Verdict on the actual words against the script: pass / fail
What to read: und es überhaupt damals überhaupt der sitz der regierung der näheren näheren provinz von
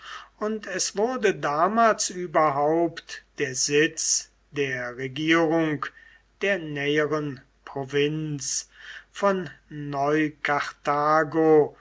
fail